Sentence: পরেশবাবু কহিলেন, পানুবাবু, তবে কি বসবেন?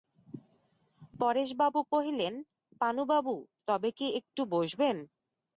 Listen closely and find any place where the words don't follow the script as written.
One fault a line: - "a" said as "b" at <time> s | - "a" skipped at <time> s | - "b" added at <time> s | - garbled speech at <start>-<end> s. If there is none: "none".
- "একটু" added at 4.2 s